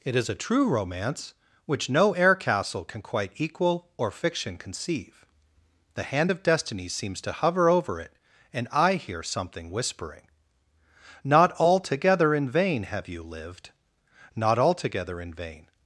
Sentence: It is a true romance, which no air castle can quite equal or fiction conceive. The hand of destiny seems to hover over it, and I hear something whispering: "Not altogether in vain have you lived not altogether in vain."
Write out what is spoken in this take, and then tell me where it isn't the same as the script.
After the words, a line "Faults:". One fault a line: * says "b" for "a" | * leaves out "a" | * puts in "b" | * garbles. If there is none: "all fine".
It is a true romance, which no air castle can quite equal or fiction conceive. The hand of destiny seems to hover over it, and I hear something whispering: "Not altogether in vain have you lived not altogether in vain."
Faults:
all fine